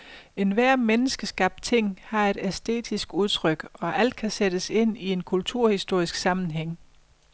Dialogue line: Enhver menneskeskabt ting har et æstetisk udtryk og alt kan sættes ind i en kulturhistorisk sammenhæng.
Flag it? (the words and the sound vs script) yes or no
no